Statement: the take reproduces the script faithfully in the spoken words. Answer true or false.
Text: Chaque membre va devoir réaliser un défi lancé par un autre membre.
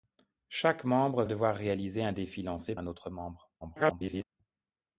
false